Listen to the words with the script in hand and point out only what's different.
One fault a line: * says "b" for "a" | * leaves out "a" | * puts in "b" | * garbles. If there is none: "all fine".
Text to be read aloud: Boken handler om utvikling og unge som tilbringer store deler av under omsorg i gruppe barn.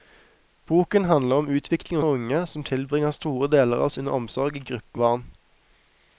all fine